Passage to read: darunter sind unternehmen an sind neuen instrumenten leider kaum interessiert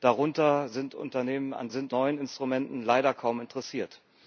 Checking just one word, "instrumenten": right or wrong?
right